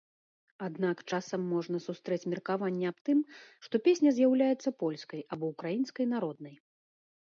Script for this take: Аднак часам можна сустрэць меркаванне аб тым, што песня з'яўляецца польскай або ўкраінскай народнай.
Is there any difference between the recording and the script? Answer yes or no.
no